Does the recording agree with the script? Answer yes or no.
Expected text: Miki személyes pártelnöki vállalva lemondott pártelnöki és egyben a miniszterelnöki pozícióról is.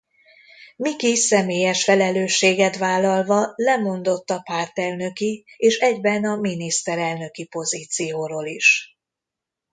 no